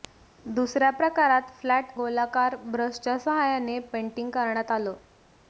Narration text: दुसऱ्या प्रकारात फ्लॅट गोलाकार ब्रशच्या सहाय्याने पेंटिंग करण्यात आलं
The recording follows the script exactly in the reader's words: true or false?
true